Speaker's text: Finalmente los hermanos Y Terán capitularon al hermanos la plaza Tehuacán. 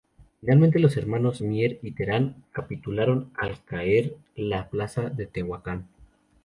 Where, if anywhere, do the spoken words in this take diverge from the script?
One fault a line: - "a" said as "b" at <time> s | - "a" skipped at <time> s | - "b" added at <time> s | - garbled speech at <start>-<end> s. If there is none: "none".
- "Mier" added at 1.4 s
- "hermanos" said as "caer" at 3.6 s
- "de" added at 5.1 s